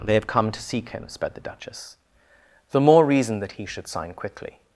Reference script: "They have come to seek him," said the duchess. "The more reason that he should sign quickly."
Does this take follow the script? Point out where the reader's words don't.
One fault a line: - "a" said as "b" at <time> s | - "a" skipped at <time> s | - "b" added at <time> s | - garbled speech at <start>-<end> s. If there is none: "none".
- "said" said as "sped" at 1.1 s